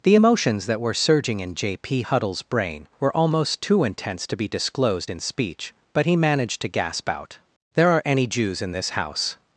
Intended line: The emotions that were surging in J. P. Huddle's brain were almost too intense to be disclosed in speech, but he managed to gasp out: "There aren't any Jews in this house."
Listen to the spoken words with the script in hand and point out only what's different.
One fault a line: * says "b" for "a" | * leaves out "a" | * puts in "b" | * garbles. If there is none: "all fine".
* says "are" for "aren't"